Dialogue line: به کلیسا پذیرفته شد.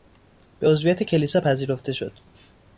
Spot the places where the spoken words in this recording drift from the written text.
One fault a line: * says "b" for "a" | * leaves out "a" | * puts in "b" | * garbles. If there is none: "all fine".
* puts in "عضویت"